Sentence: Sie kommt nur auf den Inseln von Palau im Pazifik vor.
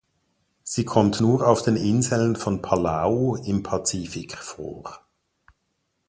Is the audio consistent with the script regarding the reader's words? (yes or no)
yes